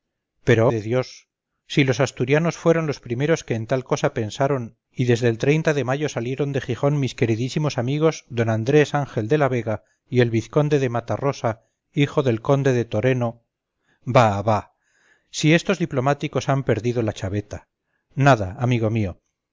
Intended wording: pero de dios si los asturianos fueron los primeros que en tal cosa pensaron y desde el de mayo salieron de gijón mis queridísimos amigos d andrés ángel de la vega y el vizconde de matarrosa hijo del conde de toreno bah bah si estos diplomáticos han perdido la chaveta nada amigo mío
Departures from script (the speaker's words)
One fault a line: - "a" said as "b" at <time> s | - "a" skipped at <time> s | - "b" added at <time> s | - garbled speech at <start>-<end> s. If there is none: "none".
none